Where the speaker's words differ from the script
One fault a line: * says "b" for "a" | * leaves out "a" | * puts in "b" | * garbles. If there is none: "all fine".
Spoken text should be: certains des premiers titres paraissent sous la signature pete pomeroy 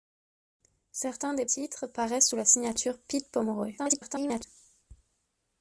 * leaves out "premiers"
* garbles